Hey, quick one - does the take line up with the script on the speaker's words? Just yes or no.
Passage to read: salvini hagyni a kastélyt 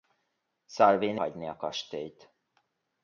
yes